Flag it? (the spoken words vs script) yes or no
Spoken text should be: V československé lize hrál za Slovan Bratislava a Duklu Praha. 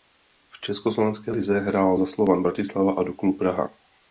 no